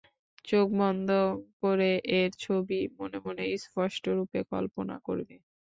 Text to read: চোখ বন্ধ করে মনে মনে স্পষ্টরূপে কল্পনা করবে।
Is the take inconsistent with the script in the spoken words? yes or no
yes